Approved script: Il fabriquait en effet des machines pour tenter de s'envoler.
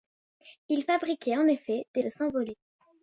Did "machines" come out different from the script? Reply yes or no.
yes